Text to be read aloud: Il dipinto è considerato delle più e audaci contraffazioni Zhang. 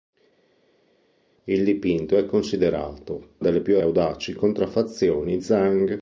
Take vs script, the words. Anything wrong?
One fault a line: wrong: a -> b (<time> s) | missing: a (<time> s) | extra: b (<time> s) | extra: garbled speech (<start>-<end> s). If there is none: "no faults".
no faults